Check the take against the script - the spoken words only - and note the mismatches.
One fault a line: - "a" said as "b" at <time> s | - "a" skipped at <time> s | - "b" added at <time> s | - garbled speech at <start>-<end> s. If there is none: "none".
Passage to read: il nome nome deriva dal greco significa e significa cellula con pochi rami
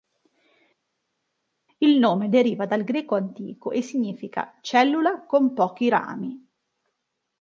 - "nome" skipped at 2.3 s
- "significa" said as "antico" at 3.2 s